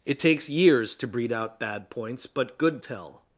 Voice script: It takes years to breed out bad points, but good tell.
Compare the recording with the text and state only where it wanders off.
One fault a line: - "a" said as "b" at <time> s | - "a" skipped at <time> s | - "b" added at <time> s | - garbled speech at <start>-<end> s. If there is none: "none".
none